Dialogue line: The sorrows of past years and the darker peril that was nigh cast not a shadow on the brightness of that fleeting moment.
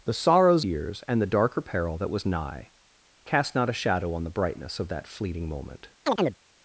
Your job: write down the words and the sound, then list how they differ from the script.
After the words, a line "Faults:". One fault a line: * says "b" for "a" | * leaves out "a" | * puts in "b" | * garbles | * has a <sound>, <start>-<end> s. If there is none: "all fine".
The sorrows years and the darker peril that was nigh cast not a shadow on the brightness of that fleeting moment.
Faults:
* leaves out "of past"
* has a chirp, 6.0-6.4 s